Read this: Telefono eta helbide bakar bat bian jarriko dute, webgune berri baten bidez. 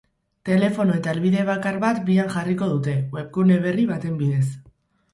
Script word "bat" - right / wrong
right